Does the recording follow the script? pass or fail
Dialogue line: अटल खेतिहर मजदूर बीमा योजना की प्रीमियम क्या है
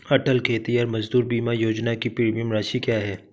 fail